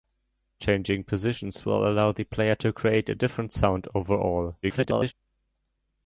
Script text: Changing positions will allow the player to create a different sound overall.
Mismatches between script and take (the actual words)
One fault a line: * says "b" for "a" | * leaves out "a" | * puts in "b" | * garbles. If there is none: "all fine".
* garbles